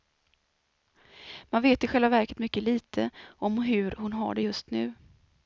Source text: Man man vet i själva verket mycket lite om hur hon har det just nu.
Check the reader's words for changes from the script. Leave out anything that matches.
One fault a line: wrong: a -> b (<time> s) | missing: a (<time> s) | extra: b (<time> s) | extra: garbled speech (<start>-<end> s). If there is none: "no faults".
missing: man (1.6 s)